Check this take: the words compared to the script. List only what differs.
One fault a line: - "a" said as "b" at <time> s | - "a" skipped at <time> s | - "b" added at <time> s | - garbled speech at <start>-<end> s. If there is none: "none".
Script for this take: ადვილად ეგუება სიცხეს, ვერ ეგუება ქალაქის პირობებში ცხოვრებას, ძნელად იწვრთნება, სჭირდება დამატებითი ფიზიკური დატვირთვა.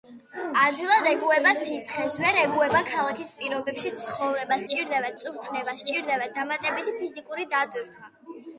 - "ძნელად" said as "სჭირდება" at 4.7 s